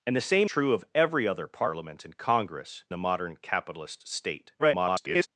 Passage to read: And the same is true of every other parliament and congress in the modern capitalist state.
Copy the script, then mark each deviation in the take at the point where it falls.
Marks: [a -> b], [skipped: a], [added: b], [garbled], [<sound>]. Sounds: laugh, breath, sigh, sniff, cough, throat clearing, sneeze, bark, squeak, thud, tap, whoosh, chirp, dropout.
And the same [skipped: is] true of every other parliament and congress [skipped: in] the modern capitalist state. [garbled]